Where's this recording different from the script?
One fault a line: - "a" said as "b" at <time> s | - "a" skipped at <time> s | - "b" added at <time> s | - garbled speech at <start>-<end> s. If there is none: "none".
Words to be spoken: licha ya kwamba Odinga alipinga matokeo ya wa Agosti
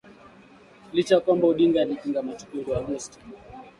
none